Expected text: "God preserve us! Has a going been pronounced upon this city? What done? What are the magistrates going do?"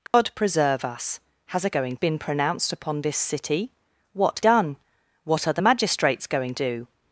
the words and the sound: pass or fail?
fail